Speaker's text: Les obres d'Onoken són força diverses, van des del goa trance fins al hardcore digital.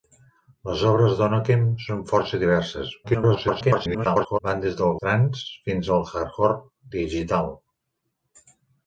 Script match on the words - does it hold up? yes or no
no